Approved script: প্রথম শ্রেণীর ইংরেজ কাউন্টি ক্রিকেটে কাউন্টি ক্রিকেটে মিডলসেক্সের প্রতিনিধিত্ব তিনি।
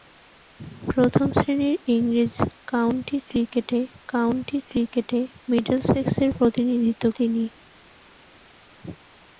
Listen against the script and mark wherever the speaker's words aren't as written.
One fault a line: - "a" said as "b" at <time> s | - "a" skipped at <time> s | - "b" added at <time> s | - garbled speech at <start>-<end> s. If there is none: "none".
none